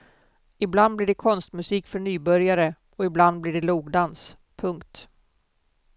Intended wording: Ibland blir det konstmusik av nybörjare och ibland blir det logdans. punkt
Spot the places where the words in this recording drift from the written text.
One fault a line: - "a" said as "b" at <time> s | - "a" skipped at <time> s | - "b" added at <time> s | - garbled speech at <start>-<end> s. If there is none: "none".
- "av" said as "för" at 1.9 s